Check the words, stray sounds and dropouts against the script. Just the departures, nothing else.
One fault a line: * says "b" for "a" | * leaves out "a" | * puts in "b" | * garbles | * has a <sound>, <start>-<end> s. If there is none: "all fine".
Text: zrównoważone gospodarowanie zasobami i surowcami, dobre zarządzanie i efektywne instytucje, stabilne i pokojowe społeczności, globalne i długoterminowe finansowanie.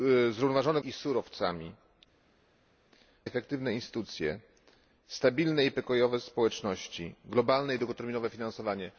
* leaves out "gospodarowanie zasobami"
* leaves out "dobre zarządzanie i"